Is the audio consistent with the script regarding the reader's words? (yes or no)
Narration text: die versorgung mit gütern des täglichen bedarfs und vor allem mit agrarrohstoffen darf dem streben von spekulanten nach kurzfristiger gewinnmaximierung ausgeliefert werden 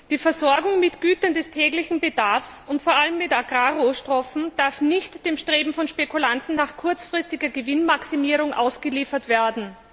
no